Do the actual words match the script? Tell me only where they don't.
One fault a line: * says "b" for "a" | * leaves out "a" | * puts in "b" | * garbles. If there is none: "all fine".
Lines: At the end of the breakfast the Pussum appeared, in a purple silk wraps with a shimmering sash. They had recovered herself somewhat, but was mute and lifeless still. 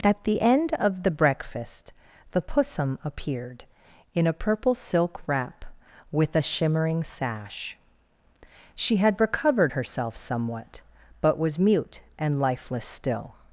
* says "wrap" for "wraps"
* says "She" for "They"